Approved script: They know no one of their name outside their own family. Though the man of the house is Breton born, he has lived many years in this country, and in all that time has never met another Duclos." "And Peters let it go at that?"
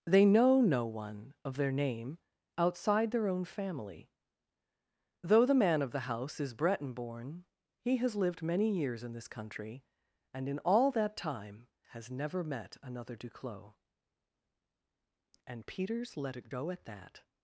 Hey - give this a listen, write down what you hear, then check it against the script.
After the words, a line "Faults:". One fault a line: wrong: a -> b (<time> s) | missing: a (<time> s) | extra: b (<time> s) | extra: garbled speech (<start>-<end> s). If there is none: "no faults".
They know no one of their name outside their own family. Though the man of the house is Breton born, he has lived many years in this country, and in all that time has never met another Duclos." "And Peters let it go at that?"
Faults:
no faults